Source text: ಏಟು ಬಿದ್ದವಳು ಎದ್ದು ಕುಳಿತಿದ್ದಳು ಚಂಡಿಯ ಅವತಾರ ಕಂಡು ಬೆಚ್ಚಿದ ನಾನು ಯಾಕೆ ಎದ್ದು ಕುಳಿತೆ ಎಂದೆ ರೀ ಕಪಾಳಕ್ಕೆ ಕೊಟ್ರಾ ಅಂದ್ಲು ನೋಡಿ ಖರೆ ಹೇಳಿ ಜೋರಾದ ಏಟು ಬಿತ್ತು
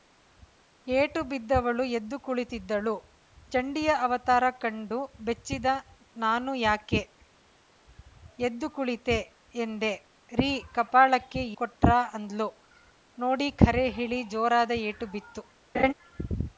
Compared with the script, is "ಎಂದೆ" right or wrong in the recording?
right